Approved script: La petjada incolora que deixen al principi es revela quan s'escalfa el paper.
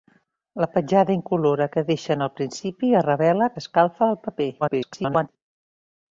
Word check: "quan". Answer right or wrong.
wrong